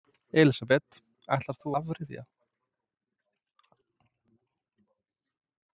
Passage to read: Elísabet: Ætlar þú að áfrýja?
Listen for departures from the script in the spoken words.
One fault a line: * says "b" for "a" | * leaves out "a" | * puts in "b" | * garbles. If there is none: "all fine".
* leaves out "að"